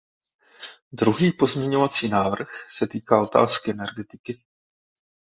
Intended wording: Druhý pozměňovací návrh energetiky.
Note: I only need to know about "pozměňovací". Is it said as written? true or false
true